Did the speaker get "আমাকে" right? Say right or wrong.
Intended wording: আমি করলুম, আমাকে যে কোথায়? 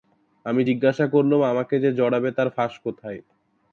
right